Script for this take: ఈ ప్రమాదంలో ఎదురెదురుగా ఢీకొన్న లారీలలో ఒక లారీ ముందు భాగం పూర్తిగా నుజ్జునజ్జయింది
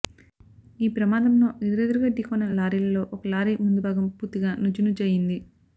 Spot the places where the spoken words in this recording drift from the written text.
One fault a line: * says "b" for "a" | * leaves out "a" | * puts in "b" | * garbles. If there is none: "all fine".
all fine